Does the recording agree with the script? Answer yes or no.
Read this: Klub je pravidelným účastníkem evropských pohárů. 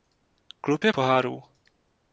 no